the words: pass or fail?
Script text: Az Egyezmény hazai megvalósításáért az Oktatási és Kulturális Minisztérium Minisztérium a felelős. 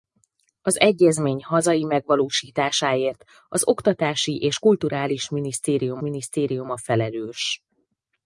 pass